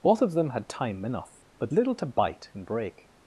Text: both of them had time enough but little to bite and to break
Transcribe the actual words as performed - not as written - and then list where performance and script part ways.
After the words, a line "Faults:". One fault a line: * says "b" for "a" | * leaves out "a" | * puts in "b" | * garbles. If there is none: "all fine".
both of them had time enough but little to bite and break
Faults:
* leaves out "to"